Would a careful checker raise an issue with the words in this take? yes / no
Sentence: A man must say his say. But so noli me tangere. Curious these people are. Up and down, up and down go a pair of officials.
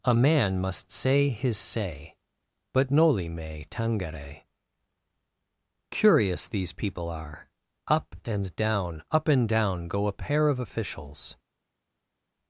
yes